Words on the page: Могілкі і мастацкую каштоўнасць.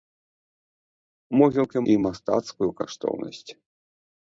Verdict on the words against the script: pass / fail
pass